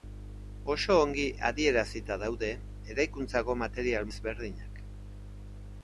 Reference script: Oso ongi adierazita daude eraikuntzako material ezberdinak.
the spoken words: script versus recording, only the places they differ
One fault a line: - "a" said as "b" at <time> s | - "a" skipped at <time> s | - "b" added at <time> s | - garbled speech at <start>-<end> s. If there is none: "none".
none